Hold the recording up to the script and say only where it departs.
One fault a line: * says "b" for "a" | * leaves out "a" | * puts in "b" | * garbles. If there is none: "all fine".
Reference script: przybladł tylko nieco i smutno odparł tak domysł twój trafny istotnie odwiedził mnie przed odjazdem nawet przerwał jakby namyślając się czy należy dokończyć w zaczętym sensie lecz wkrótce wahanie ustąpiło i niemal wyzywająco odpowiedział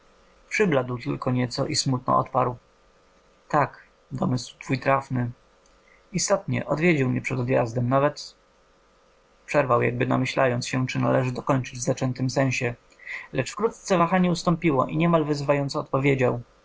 all fine